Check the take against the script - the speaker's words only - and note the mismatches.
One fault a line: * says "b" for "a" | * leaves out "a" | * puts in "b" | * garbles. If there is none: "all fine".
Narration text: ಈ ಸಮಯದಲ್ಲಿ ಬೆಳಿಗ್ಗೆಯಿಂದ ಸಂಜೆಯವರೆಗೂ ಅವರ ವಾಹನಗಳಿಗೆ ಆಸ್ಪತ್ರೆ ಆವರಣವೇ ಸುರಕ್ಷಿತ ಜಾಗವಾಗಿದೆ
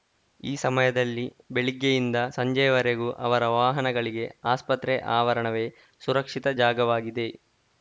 all fine